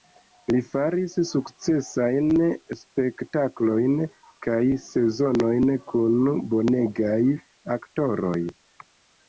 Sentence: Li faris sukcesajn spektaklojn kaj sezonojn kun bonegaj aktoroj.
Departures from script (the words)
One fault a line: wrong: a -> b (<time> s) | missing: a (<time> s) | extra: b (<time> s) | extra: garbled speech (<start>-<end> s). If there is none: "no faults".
no faults